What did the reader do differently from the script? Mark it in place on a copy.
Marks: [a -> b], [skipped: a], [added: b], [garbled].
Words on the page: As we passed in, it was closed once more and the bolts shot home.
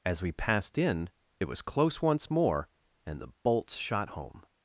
As we passed in, it was [closed -> close] once more and the bolts shot home.